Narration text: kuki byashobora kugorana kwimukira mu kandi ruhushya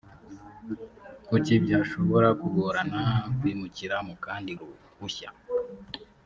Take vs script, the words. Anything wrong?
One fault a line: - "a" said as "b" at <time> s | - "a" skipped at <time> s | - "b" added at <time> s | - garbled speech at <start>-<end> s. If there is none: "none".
none